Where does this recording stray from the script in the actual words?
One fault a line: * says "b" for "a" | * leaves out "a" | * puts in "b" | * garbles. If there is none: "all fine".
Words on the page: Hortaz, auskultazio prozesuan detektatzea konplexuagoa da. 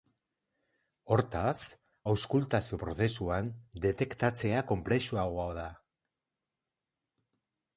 all fine